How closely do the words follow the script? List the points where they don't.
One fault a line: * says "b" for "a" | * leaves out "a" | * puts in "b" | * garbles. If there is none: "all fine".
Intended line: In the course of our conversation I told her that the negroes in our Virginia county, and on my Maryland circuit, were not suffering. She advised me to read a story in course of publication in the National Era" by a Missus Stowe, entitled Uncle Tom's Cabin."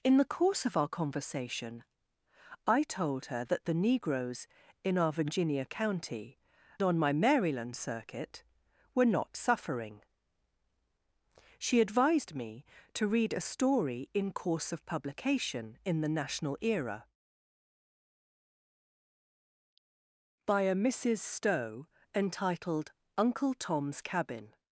* leaves out "and"